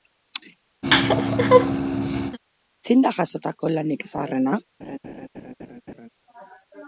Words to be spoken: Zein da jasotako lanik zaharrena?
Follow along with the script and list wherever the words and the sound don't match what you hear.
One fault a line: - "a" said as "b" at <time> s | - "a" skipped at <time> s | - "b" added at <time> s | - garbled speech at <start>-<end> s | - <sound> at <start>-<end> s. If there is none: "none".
- laugh at 0.8-2.4 s
- laugh at 4.8-6.1 s